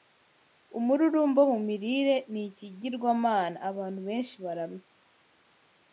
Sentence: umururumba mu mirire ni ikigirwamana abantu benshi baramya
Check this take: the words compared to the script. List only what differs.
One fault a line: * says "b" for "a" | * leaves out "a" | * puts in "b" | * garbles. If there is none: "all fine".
all fine